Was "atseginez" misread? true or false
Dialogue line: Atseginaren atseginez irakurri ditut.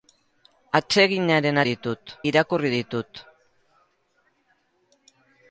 true